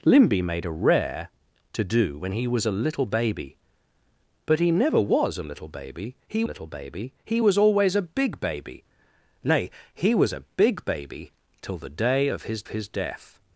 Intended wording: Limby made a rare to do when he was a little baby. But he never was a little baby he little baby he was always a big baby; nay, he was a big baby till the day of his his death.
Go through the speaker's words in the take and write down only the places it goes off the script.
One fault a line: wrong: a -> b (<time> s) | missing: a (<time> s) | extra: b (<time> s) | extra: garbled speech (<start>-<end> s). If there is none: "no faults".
no faults